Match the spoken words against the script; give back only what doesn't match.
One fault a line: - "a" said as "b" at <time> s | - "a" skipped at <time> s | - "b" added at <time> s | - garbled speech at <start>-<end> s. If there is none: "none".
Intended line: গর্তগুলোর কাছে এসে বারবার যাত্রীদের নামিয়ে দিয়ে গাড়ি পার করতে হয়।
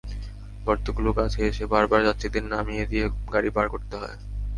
none